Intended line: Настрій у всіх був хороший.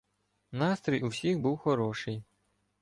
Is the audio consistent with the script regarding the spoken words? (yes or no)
yes